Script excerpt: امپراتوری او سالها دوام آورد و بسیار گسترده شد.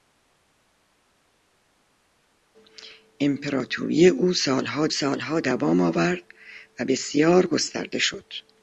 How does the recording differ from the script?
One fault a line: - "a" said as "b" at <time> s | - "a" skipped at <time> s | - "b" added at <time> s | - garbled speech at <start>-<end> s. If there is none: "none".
- "سالها" added at 4.9 s